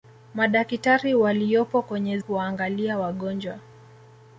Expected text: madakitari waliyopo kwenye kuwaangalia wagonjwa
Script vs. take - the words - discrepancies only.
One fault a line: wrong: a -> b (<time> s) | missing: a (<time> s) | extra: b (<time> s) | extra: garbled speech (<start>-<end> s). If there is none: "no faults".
no faults